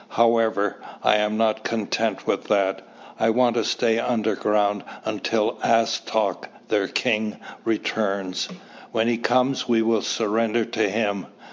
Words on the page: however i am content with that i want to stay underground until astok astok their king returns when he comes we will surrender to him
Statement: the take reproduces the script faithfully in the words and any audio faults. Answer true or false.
false